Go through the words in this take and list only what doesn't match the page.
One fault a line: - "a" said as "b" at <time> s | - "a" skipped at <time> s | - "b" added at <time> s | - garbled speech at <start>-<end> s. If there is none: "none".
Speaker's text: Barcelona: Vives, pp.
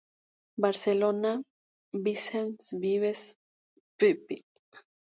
- "Vicens" added at 1.9 s